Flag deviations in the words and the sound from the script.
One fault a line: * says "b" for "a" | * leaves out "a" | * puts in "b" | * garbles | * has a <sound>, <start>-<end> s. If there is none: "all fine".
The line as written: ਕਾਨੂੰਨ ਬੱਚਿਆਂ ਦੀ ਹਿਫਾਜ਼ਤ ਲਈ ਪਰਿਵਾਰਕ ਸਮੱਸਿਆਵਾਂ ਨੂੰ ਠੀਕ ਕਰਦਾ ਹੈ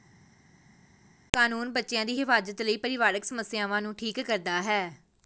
all fine